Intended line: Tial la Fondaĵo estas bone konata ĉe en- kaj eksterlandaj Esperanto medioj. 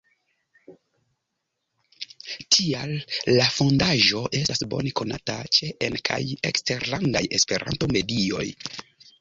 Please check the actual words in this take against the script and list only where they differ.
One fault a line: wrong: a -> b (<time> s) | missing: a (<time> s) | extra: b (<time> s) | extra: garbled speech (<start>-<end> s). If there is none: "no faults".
no faults